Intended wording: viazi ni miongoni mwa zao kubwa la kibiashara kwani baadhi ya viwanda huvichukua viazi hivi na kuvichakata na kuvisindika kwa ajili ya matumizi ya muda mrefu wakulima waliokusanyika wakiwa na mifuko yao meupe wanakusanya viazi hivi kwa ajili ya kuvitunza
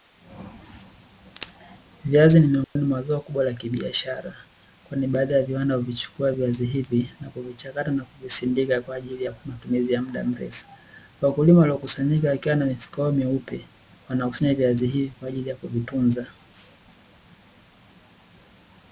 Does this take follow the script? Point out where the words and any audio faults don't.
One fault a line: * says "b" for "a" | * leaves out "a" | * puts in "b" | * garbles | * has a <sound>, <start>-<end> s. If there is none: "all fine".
* has a dropout, 2.6-2.8 s